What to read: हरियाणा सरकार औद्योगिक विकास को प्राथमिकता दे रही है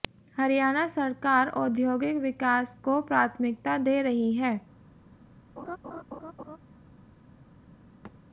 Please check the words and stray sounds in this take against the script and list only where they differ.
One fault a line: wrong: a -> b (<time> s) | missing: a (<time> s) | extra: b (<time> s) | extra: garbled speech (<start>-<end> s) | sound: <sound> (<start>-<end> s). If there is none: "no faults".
sound: laugh (5.6-6.6 s)
sound: thud (8.0-8.2 s)